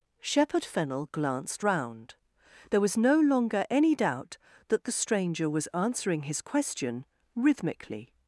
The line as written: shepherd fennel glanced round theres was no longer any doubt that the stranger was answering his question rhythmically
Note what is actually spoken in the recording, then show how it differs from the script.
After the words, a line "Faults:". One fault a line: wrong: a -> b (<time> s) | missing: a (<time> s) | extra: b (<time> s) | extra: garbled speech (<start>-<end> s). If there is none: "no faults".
shepherd fennel glanced round there was no longer any doubt that the stranger was answering his question rhythmically
Faults:
wrong: theres -> there (2.7 s)